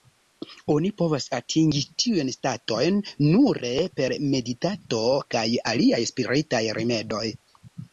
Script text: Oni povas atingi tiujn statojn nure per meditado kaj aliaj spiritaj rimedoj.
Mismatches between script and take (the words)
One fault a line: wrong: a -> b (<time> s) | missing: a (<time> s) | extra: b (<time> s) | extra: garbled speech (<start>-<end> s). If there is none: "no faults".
no faults